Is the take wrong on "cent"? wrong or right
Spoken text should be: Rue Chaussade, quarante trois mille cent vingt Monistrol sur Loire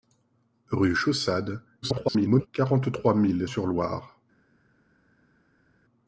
wrong